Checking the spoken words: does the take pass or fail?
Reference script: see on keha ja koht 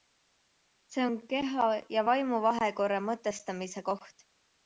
fail